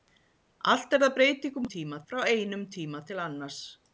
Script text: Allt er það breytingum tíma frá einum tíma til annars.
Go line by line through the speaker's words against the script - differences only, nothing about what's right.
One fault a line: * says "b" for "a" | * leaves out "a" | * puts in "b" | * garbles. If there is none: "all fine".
all fine